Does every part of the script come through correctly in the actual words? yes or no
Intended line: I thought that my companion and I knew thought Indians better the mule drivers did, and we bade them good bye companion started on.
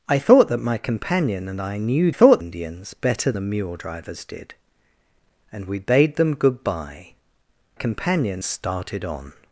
yes